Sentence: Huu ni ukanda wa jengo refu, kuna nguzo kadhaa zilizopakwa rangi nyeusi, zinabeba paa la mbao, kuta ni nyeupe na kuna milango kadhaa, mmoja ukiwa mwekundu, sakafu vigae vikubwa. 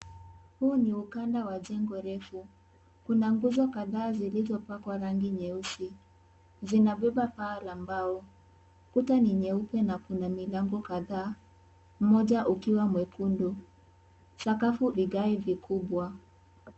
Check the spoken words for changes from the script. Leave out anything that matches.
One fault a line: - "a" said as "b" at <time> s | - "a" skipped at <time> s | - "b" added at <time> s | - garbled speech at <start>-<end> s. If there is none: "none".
none